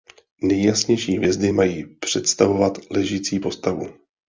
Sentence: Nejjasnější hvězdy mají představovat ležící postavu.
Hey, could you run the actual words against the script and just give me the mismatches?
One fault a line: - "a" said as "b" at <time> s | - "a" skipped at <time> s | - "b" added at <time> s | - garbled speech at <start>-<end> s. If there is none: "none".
none